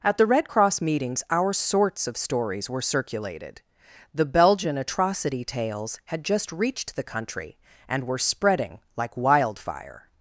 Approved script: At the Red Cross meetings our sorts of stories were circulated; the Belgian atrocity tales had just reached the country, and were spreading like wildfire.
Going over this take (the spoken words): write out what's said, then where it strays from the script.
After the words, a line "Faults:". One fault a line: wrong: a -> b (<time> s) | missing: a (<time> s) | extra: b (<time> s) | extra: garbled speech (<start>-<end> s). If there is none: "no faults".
At the Red Cross meetings our sorts of stories were circulated; the Belgian atrocity tales had just reached the country, and were spreading like wildfire.
Faults:
no faults